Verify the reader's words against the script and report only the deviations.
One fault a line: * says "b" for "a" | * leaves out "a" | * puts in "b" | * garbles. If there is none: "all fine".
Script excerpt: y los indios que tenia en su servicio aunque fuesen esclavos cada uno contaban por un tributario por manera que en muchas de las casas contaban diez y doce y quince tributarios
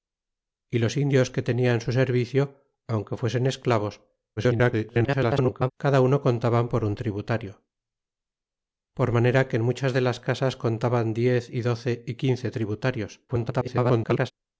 * garbles
* garbles